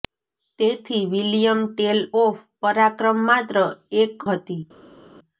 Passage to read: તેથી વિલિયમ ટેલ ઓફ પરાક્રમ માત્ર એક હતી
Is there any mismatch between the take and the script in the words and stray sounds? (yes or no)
no